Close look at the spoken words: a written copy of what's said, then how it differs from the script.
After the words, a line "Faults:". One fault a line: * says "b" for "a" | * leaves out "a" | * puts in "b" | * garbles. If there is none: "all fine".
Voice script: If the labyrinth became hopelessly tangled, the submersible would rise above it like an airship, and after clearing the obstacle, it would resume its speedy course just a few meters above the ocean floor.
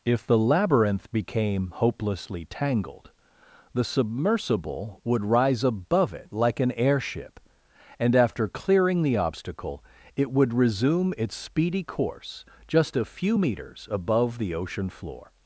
If the labyrinth became hopelessly tangled, the submersible would rise above it like an airship, and after clearing the obstacle, it would resume its speedy course just a few meters above the ocean floor.
Faults:
all fine